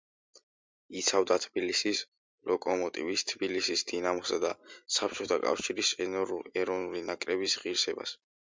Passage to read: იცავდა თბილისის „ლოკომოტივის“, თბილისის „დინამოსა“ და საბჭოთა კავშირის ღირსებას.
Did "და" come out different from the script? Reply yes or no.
no